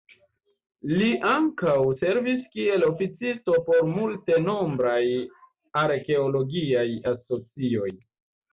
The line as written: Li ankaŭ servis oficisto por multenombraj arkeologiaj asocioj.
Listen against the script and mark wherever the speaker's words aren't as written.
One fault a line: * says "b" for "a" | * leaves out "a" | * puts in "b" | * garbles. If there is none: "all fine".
* puts in "kiel"